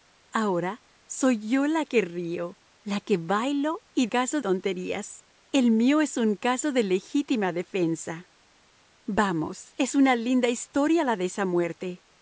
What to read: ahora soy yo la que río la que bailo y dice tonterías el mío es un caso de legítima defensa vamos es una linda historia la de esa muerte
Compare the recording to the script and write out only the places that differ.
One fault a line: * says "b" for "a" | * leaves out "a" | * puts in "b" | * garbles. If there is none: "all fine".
* says "caso" for "dice"